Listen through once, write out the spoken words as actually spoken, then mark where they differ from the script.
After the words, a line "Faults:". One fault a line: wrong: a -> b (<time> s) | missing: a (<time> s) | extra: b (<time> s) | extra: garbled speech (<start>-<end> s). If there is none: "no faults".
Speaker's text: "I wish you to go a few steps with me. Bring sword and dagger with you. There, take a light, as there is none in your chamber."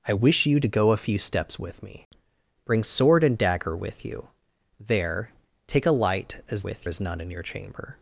"I wish you to go a few steps with me. Bring sword and dagger with you. There, take a light, as with is none in your chamber."
Faults:
wrong: there -> with (6.6 s)